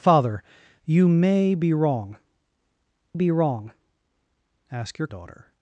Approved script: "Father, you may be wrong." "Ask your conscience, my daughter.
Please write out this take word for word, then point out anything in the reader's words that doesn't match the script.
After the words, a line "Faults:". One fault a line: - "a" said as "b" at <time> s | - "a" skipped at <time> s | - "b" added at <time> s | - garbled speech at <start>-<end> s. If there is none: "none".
"Father, you may be wrong be wrong." "Ask your daughter.
Faults:
- "be wrong" added at 3.1 s
- "conscience my" skipped at 5.1 s